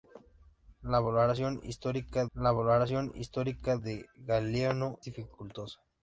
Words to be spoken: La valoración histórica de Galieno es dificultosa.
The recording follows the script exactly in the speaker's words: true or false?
false